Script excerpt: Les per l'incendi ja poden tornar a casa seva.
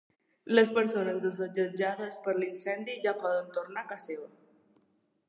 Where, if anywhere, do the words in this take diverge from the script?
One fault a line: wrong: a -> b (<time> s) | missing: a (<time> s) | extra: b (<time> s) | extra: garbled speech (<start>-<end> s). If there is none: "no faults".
extra: persones desallotjades (0.8 s)